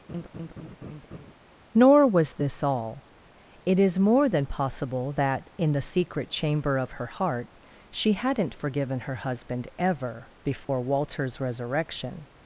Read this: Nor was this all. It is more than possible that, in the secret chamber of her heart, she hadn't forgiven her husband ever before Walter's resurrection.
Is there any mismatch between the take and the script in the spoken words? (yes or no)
no